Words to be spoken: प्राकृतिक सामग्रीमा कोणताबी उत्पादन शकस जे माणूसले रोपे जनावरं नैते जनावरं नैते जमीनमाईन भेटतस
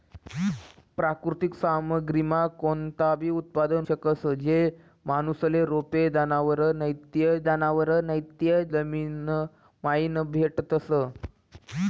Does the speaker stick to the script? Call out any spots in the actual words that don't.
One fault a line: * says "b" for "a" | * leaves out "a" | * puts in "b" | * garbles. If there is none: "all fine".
all fine